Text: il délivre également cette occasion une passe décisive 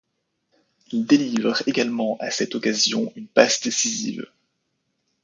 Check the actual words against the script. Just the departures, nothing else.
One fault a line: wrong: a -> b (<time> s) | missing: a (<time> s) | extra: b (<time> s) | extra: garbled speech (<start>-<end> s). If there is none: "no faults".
extra: à (2.2 s)